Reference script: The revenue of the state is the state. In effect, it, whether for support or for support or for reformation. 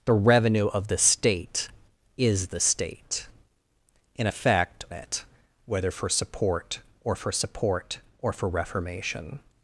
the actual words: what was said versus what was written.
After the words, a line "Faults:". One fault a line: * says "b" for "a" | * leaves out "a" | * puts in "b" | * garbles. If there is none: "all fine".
The revenue of the state is the state. In effect, it, whether for support or for support or for reformation.
Faults:
all fine